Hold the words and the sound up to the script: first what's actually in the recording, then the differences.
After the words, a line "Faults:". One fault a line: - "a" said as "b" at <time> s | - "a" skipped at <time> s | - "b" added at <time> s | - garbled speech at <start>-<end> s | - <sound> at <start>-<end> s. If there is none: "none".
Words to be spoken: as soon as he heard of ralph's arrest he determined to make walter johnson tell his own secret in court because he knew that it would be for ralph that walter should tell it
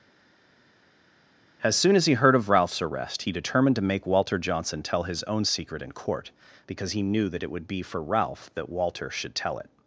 as soon as he heard of ralph's arrest he determined to make walter johnson tell his own secret in court because he knew that it would be for ralph that walter should tell it
Faults:
none